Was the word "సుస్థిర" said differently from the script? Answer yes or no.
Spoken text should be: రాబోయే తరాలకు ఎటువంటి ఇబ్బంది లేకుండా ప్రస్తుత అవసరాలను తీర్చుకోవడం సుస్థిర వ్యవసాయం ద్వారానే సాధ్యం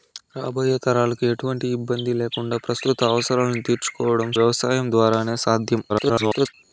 yes